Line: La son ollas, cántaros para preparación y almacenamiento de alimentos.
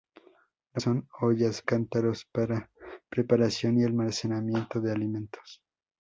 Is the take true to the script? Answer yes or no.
yes